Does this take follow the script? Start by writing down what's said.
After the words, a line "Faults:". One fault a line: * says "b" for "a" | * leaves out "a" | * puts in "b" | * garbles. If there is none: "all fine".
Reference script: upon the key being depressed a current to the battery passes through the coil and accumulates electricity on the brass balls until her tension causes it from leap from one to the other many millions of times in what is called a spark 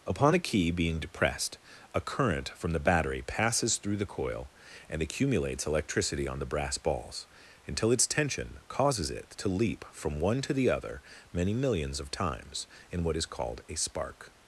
upon the key being depressed a current from the battery passes through the coil and accumulates electricity on the brass balls until its tension causes it to leap from one to the other many millions of times in what is called a spark
Faults:
* says "from" for "to"
* says "its" for "her"
* says "to" for "from"